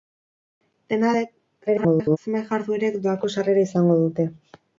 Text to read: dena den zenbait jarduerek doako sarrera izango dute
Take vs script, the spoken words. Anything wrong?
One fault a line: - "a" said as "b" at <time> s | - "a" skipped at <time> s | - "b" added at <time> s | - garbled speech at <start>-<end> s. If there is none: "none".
- garbled speech at 1.7-2.2 s